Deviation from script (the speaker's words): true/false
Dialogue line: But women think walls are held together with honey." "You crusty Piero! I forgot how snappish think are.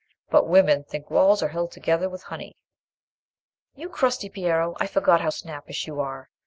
true